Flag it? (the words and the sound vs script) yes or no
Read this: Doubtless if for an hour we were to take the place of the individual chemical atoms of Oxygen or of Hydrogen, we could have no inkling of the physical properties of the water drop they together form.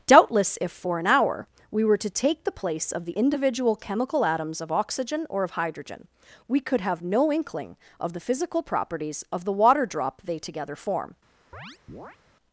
yes